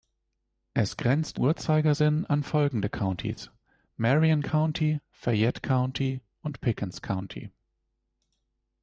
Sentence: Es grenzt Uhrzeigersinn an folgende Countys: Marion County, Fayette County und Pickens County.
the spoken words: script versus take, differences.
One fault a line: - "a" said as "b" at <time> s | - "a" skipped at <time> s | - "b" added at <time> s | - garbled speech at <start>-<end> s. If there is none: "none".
none